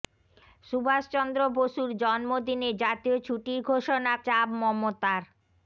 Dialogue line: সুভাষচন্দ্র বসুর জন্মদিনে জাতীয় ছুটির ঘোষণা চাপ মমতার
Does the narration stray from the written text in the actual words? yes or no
no